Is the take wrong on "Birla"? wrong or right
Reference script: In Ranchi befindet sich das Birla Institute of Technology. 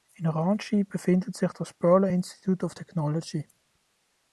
right